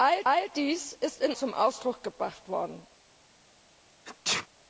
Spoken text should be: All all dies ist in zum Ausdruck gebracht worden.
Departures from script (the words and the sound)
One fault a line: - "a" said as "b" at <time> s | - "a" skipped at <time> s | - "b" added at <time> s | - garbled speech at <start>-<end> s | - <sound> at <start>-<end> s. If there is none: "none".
- sneeze at 4.1-4.5 s